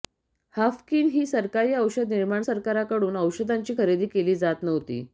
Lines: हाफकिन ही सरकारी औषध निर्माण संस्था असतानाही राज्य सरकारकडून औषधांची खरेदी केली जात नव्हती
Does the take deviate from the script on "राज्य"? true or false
true